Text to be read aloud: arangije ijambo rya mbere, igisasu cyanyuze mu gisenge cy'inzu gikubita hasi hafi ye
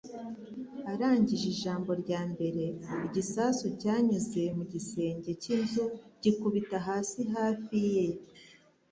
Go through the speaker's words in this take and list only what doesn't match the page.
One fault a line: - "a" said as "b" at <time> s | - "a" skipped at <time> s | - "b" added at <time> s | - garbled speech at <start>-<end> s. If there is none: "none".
none